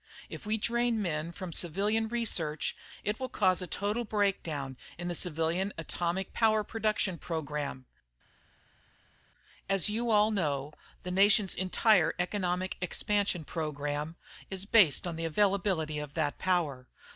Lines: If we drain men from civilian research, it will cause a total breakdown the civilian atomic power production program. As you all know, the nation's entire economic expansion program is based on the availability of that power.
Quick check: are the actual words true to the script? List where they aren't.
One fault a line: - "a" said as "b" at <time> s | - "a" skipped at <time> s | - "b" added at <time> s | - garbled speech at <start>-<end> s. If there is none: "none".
- "in" added at 5.0 s